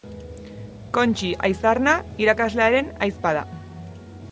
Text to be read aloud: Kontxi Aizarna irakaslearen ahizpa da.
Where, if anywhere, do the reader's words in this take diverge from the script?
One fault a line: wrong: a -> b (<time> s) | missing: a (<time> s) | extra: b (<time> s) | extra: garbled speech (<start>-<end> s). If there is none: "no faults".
no faults